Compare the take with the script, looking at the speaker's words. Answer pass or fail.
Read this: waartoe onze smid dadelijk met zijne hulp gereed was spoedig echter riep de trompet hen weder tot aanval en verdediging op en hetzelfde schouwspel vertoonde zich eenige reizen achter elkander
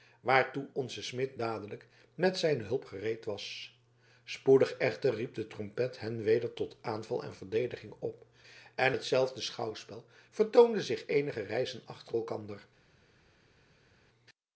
pass